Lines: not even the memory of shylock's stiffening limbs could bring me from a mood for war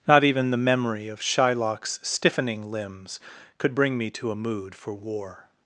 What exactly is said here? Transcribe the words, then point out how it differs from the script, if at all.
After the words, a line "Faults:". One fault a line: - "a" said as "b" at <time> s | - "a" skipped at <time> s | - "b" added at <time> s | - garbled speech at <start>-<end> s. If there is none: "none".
not even the memory of shylock's stiffening limbs could bring me to a mood for war
Faults:
- "from" said as "to" at 4.1 s